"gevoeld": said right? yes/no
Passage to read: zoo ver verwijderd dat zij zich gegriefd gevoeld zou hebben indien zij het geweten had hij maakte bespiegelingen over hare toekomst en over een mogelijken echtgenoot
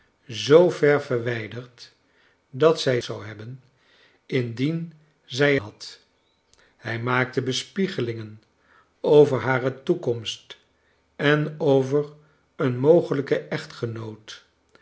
no